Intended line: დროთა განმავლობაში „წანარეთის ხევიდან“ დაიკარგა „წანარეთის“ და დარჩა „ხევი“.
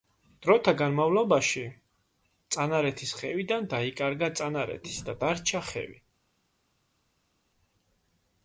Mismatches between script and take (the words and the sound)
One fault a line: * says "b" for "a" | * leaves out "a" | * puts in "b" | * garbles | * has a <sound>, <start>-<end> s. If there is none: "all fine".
all fine